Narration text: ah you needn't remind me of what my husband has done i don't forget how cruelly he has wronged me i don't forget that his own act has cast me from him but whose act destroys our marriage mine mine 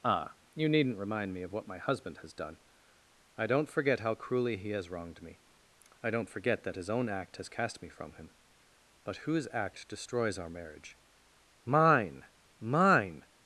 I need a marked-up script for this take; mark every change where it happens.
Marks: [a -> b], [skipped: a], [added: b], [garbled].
ah you needn't remind me of what my husband has done i don't forget how cruelly he has wronged me i don't forget that his own act has cast me from him but whose act destroys our marriage mine mine